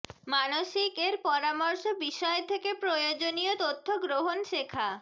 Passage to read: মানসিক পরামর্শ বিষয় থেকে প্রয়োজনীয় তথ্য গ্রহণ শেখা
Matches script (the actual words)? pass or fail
fail